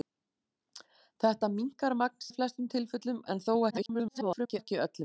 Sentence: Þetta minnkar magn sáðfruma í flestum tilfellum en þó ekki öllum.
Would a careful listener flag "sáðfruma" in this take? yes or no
yes